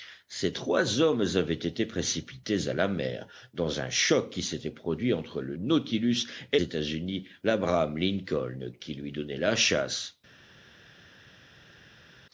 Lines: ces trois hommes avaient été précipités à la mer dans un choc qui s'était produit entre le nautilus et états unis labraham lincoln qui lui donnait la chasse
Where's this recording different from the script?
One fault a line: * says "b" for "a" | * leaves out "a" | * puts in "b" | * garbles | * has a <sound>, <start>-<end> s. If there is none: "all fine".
all fine